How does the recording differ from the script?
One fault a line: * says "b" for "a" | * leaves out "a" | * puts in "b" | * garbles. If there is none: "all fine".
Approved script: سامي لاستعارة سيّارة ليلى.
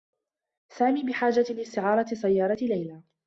* puts in "بحاجة"